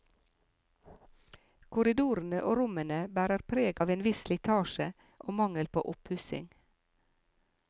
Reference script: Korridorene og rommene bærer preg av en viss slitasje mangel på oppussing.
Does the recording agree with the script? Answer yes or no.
no